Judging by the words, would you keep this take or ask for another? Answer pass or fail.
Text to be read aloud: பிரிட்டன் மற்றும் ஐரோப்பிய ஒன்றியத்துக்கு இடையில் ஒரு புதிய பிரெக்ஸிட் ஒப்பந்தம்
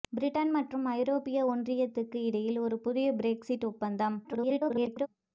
fail